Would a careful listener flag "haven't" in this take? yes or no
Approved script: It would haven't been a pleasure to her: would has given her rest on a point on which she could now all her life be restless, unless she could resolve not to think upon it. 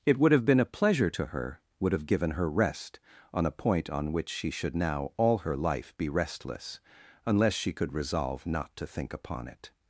yes